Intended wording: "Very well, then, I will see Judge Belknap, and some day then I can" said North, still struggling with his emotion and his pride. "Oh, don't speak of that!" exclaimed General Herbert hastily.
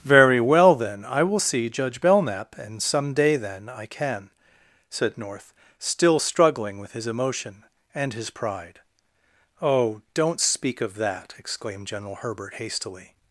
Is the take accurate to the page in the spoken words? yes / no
yes